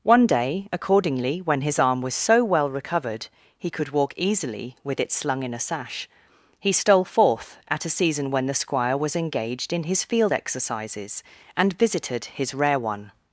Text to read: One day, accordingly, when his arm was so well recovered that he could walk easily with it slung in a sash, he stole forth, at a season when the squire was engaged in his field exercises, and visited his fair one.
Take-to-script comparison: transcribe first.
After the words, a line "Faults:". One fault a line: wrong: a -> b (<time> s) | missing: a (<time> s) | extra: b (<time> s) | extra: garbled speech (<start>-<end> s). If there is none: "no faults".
One day, accordingly, when his arm was so well recovered he could walk easily with it slung in a sash, he stole forth, at a season when the squire was engaged in his field exercises, and visited his rare one.
Faults:
missing: that (3.3 s)
wrong: fair -> rare (12.5 s)